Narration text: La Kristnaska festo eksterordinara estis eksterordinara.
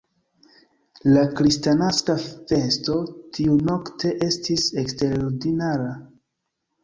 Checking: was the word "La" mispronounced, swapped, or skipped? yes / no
no